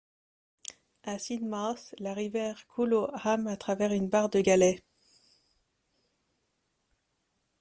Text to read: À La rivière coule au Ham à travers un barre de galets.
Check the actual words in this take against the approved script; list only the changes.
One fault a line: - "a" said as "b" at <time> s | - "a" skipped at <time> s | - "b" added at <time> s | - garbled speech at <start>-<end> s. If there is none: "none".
- "Sidmouth" added at 1.2 s
- "un" said as "une" at 3.9 s